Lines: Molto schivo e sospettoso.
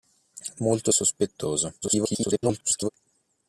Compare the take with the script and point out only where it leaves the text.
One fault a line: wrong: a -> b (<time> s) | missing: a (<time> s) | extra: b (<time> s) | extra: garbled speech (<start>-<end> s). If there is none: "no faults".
missing: schivo (0.9 s)
extra: garbled speech (1.8-2.9 s)